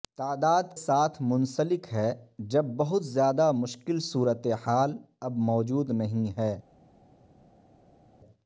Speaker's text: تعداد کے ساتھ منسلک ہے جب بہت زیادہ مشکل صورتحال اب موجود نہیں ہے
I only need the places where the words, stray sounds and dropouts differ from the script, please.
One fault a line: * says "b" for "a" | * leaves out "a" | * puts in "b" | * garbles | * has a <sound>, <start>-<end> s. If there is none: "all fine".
* leaves out "کے"